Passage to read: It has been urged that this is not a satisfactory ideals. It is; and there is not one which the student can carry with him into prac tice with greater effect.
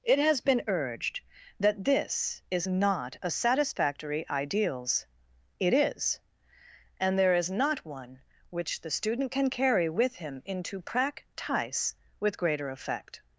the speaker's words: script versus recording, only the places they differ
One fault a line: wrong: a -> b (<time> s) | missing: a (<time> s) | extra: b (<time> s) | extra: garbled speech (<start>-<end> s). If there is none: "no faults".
no faults